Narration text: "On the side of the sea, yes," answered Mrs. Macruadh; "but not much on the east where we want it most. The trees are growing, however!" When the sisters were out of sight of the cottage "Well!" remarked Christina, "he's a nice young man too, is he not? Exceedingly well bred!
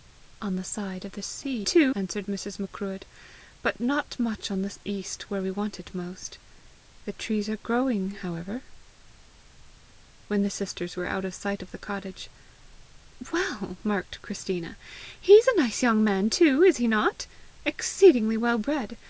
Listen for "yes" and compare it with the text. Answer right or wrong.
wrong